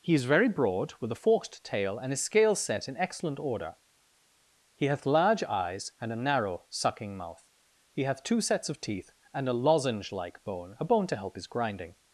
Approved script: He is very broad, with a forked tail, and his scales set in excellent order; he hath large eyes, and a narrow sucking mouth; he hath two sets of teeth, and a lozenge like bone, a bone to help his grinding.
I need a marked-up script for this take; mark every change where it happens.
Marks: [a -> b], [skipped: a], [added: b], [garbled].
He is very broad, with a forked tail, and his scales set in excellent order; he hath large eyes, and a narrow sucking mouth; he hath two sets of teeth, and a lozenge like bone, a bone to help his grinding.